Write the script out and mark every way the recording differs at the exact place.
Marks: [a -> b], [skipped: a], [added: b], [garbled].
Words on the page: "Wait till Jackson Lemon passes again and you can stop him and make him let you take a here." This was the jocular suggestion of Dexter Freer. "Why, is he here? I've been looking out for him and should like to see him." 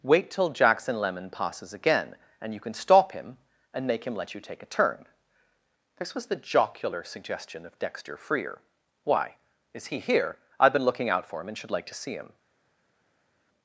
"Wait till Jackson Lemon passes again and you can stop him and make him let you take a [here." -> turn] This was the jocular suggestion of Dexter Freer. "Why, is he here? I've been looking out for him and should like to see him."